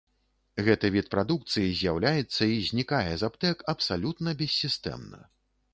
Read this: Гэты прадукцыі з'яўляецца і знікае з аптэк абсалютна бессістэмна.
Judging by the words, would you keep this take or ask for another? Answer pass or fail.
fail